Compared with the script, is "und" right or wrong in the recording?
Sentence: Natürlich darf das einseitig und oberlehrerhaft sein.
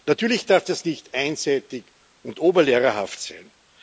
right